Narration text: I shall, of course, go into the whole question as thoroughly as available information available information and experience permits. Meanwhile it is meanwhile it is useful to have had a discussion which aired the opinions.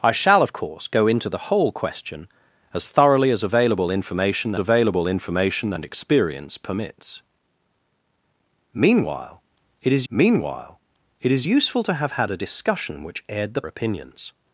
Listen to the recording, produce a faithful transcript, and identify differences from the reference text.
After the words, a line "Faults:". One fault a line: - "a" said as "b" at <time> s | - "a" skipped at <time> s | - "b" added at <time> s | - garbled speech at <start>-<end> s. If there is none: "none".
I shall, of course, go into the whole question as thoroughly as available information available information and experience permits. Meanwhile it is meanwhile it is useful to have had a discussion which aired the opinions.
Faults:
none